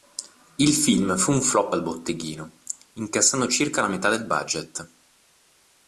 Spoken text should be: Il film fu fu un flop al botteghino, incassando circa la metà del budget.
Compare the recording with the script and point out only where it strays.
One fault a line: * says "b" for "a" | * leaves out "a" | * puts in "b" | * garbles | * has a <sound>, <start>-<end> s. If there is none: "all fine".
* leaves out "fu"